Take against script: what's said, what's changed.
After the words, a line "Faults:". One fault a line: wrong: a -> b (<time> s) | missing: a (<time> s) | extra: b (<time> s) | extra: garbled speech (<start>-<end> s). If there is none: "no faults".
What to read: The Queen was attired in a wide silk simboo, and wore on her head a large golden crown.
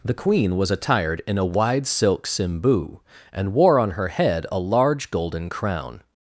The Queen was attired in a wide silk simboo, and wore on her head a large golden crown.
Faults:
no faults